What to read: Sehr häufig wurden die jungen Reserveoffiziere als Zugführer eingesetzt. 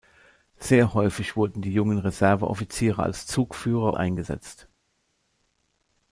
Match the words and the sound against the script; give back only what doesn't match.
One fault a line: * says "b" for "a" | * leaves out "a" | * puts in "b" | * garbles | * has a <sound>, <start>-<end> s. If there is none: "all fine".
all fine